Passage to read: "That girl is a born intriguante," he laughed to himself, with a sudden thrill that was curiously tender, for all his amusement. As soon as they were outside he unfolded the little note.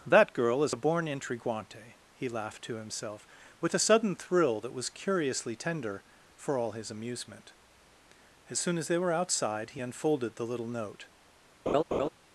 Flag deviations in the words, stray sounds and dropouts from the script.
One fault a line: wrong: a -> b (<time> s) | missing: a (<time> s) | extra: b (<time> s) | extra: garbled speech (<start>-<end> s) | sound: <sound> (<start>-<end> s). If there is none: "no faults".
sound: laugh (11.7-12.1 s)